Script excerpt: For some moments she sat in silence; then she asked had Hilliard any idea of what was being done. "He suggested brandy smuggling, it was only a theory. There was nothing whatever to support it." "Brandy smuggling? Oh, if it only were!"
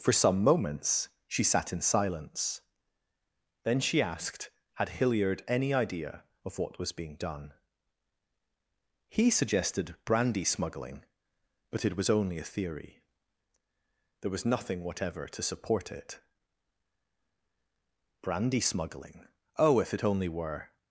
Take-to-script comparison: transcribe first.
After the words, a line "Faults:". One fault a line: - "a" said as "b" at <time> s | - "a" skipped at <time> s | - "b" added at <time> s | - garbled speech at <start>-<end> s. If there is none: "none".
For some moments she sat in silence; then she asked had Hilliard any idea of what was being done. "He suggested brandy smuggling, but it was only a theory. There was nothing whatever to support it." "Brandy smuggling? Oh, if it only were!"
Faults:
- "but" added at 11.7 s